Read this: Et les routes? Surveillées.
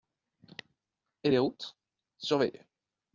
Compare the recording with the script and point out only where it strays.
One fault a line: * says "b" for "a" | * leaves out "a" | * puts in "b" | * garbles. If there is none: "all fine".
all fine